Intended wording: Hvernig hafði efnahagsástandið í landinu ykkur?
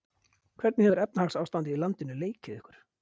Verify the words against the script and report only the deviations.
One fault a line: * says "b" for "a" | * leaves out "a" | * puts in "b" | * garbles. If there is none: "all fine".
* says "hefur" for "hafði"
* puts in "leikið"